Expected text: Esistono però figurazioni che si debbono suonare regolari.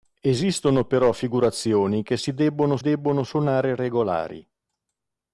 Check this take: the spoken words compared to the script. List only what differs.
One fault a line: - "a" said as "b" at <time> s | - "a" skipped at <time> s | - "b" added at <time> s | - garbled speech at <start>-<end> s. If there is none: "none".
- "debbono" added at 2.8 s